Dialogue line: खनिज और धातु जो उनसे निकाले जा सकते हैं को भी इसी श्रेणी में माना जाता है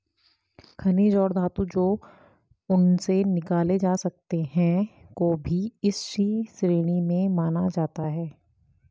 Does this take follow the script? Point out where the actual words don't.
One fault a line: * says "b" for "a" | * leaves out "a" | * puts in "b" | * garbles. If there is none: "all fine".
all fine